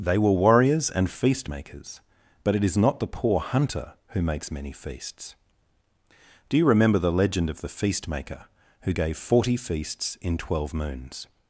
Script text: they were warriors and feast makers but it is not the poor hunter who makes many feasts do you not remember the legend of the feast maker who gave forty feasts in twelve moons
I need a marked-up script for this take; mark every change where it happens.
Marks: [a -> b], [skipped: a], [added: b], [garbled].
they were warriors and feast makers but it is not the poor hunter who makes many feasts do you [skipped: not] remember the legend of the feast maker who gave forty feasts in twelve moons